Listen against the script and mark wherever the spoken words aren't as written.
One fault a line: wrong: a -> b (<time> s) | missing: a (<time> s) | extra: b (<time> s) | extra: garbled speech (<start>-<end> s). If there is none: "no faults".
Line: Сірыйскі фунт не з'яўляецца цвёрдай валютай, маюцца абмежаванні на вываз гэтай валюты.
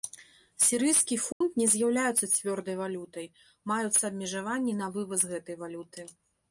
no faults